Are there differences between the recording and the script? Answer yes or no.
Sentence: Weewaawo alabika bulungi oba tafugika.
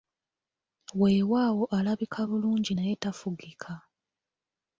yes